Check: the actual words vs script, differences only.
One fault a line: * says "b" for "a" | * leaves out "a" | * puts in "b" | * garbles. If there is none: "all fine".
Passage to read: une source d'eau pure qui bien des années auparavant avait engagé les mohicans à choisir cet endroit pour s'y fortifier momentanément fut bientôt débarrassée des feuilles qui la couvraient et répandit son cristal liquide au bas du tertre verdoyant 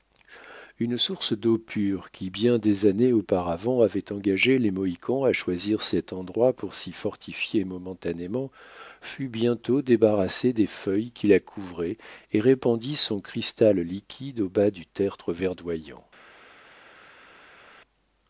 all fine